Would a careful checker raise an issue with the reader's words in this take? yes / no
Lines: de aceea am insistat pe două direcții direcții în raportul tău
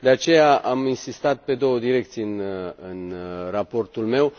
yes